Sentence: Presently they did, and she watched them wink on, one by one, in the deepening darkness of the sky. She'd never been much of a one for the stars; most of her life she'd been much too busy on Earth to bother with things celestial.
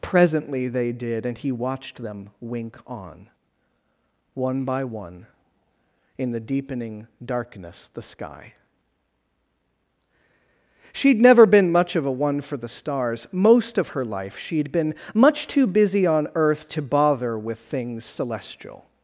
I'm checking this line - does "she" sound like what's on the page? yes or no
no